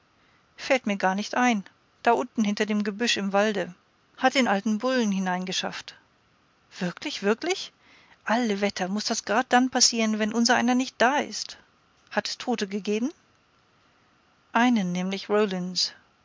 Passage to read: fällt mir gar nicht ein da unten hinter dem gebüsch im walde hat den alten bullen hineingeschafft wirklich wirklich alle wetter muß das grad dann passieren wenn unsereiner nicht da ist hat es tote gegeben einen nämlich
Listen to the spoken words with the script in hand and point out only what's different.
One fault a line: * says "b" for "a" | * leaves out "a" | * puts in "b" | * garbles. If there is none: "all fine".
all fine